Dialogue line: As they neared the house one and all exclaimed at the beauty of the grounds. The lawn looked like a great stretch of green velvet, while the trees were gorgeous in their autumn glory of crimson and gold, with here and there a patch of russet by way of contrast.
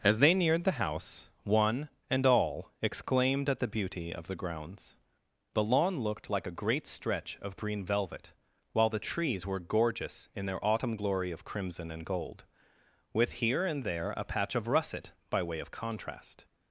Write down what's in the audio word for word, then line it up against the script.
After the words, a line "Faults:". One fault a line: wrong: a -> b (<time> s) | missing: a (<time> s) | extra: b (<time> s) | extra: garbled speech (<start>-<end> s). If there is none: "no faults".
As they neared the house one and all exclaimed at the beauty of the grounds. The lawn looked like a great stretch of green velvet, while the trees were gorgeous in their autumn glory of crimson and gold, with here and there a patch of russet by way of contrast.
Faults:
no faults